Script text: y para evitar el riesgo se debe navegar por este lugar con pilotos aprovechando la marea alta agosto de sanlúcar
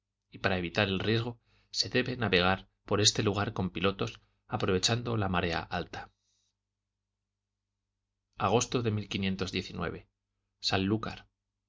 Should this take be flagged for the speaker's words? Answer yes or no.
no